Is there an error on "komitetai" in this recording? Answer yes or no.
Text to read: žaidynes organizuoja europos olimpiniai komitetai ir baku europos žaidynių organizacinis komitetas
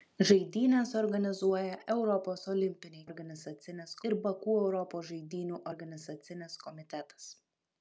yes